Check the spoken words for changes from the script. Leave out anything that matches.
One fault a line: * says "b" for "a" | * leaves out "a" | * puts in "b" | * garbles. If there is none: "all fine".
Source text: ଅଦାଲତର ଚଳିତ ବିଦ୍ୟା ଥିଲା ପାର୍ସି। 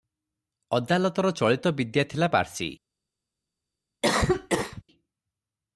all fine